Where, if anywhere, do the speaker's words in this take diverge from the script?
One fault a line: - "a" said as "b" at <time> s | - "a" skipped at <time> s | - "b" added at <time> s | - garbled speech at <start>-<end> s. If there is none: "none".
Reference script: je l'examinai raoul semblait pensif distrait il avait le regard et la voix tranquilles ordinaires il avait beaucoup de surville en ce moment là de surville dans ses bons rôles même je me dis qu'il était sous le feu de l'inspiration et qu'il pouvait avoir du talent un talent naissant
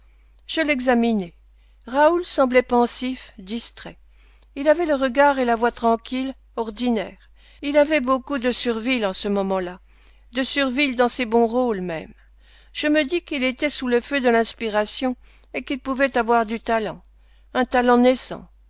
none